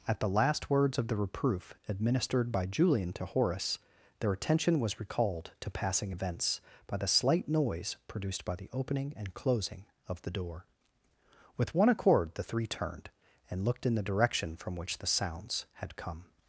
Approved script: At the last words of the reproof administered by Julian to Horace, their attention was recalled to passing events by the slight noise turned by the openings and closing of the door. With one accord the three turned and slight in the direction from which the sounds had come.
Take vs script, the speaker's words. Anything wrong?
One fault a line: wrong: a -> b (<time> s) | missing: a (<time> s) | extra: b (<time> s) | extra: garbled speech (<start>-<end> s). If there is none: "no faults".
wrong: turned -> produced (8.1 s)
wrong: openings -> opening (8.7 s)
wrong: slight -> looked (13.7 s)